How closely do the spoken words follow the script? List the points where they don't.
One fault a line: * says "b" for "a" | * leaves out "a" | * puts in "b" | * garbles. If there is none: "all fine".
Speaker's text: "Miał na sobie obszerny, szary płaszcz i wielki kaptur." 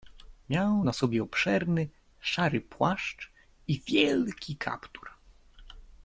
all fine